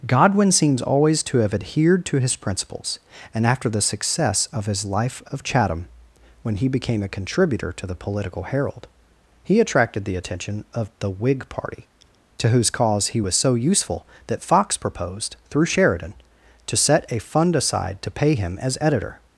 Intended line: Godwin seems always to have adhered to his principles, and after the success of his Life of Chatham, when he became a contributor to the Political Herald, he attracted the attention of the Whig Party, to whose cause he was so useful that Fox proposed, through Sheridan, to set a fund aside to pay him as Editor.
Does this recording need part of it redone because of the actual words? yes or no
no